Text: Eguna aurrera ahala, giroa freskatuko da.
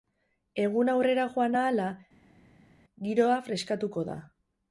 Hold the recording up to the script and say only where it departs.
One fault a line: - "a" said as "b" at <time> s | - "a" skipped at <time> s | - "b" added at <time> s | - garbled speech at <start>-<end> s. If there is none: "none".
- "joan" added at 1.4 s